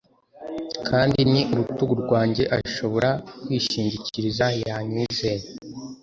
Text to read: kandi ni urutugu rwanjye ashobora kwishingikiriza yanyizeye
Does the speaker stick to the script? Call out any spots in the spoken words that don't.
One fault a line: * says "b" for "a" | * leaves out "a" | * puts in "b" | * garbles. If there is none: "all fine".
all fine